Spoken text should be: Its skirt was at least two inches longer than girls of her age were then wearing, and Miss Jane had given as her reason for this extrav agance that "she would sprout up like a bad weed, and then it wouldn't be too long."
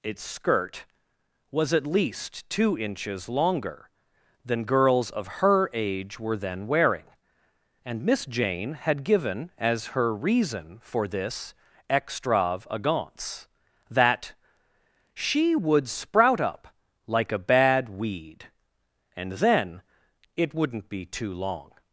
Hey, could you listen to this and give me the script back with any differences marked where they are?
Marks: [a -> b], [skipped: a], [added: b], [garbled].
Its skirt was at least two inches longer than girls of her age were then wearing, and Miss Jane had given as her reason for this extrav agance that "she would sprout up like a bad weed, and then it wouldn't be too long."